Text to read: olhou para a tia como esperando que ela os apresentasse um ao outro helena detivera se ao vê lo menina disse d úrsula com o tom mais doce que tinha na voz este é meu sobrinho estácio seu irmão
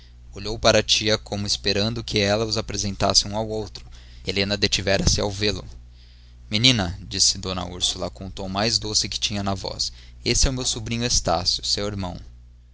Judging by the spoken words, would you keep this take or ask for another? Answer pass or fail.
pass